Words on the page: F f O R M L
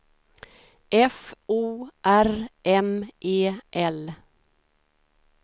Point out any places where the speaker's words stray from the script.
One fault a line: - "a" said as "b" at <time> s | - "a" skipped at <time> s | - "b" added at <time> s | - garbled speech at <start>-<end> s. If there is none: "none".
- "f" skipped at 1.4 s
- "E" added at 3.2 s